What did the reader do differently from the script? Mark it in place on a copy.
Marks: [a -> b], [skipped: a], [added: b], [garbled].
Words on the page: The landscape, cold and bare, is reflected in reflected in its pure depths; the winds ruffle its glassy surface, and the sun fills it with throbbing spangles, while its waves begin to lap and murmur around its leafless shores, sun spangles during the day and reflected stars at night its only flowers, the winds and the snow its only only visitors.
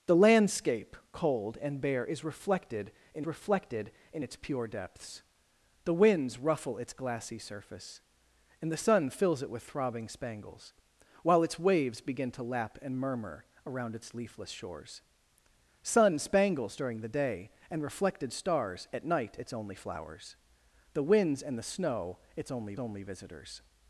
The landscape, cold and bare, is reflected in reflected in its pure depths; the winds ruffle its glassy surface, and the sun fills it with throbbing spangles, while its waves begin to lap and murmur around its leafless shores, sun spangles during the day and reflected stars at night its only flowers, the winds and the snow its only only visitors.